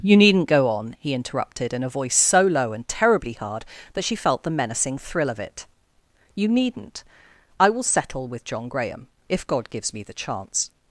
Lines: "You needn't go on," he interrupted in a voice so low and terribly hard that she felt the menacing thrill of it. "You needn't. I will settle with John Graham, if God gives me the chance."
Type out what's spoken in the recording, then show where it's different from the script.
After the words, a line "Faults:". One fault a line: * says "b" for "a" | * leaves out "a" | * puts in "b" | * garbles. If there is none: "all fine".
"You needn't go on," he interrupted in a voice so low and terribly hard that she felt the menacing thrill of it. "You needn't. I will settle with John Graham, if God gives me the chance."
Faults:
all fine